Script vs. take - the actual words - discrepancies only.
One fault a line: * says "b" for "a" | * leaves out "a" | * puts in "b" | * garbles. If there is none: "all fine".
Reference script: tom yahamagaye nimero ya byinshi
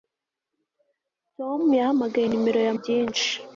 all fine